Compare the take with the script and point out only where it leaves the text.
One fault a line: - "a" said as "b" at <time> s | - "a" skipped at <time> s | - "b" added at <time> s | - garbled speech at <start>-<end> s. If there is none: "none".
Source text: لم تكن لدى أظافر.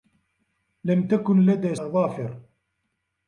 none